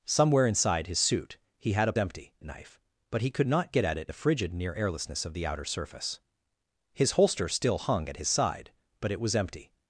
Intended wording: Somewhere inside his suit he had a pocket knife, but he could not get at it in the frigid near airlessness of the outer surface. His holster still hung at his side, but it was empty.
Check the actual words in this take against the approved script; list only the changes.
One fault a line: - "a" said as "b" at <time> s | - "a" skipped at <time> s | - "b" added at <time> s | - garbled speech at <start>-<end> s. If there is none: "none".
- "pocket" said as "empty" at 2.0 s
- "in" skipped at 4.1 s